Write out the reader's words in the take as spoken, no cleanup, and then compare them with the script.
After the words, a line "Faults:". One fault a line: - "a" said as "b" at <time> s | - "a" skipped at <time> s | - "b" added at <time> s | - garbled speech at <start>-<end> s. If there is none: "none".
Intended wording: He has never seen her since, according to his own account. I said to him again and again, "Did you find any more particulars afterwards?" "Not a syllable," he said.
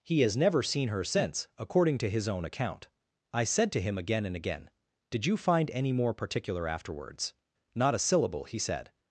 He has never seen her since, according to his own account. I said to him again and again, "Did you find any more particular afterwards?" "Not a syllable," he said.
Faults:
- "particulars" said as "particular" at 6.1 s